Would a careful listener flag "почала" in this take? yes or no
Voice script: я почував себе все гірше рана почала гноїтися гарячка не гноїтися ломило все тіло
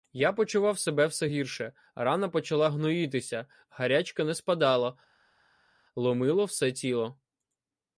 no